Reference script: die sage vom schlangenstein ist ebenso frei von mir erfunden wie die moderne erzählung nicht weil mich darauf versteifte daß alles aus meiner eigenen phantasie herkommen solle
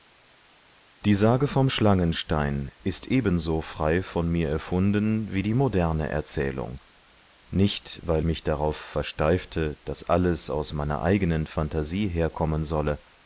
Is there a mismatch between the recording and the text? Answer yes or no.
no